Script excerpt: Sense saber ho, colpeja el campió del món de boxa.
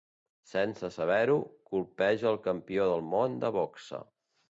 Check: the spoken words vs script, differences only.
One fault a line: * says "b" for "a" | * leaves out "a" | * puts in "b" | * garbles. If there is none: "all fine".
all fine